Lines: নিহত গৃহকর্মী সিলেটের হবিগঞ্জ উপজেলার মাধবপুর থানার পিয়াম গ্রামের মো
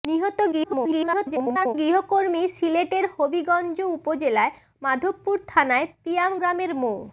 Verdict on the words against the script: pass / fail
fail